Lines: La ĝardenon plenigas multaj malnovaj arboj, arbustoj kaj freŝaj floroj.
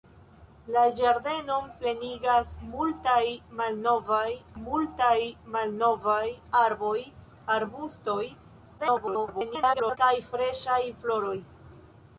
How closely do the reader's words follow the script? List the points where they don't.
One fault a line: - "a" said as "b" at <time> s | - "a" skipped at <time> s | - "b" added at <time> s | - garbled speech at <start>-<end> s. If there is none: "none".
- "multaj malnovaj" added at 4.6 s
- garbled speech at 8.8-10.0 s